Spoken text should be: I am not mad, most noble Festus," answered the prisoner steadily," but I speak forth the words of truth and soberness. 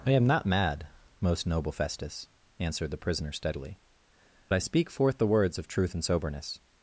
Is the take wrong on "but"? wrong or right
wrong